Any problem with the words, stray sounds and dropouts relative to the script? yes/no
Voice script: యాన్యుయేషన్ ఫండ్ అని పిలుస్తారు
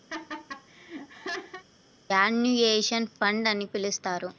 yes